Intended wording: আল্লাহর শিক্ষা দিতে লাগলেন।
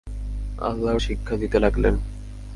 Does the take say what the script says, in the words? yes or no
yes